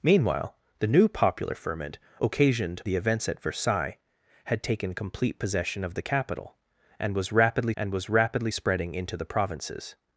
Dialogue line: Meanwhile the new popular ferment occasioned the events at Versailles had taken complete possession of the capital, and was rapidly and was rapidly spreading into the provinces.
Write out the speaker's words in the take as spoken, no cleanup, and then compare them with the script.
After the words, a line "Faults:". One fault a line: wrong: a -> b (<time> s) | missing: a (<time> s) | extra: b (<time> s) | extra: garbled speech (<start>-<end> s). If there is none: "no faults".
Meanwhile the new popular ferment occasioned the events at Versailles had taken complete possession of the capital, and was rapidly and was rapidly spreading into the provinces.
Faults:
no faults